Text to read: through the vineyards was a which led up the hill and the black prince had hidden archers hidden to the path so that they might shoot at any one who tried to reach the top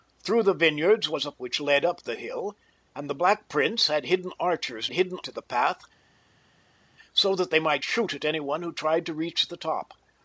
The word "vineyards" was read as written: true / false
true